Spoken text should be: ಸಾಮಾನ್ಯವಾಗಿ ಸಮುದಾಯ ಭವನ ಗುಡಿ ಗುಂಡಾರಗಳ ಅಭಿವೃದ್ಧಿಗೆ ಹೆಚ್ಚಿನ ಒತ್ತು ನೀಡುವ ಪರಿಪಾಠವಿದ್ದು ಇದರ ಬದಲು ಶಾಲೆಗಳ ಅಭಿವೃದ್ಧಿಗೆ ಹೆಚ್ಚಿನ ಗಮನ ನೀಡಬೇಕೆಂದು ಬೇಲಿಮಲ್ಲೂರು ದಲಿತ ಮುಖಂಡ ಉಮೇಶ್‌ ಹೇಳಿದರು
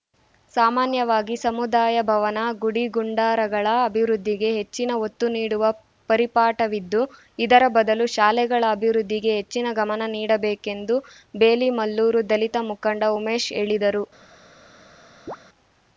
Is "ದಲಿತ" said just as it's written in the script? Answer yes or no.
yes